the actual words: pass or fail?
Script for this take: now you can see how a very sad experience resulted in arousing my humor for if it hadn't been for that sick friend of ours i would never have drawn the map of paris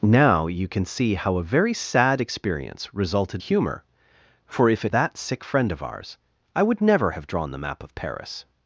fail